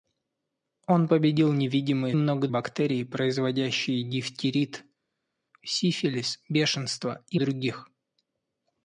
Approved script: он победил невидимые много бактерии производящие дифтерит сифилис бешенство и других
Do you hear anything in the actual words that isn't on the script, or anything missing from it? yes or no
no